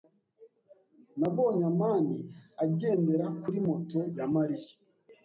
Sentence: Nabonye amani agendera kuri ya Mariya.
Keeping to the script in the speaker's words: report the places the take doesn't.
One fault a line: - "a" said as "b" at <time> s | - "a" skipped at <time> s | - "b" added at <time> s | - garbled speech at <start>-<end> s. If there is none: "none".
- "moto" added at 3.7 s